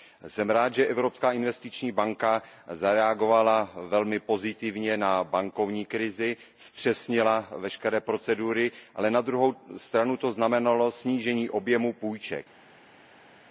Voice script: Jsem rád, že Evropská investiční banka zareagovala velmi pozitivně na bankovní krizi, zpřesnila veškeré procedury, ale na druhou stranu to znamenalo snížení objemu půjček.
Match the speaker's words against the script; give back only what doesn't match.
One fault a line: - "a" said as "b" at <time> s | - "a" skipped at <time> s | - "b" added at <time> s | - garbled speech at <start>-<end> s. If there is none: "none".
none